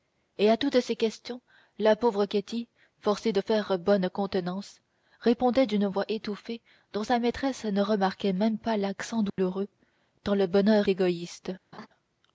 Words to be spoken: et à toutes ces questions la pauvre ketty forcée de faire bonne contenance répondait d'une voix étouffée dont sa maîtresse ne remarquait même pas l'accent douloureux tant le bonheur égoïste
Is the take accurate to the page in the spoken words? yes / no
yes